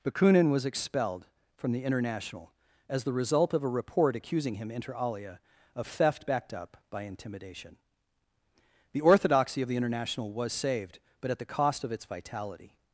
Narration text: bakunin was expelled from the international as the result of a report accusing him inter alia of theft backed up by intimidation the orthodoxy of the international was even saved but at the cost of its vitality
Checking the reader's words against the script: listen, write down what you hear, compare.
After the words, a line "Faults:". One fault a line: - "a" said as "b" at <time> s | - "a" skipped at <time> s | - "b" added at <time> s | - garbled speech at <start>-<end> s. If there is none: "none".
bakunin was expelled from the international as the result of a report accusing him inter alia of theft backed up by intimidation the orthodoxy of the international was saved but at the cost of its vitality
Faults:
- "even" skipped at 10.5 s